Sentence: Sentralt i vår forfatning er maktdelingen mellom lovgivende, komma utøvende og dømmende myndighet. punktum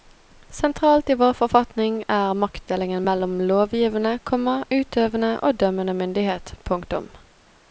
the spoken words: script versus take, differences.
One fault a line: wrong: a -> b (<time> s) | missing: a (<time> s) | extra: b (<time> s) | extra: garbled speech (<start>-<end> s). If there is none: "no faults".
no faults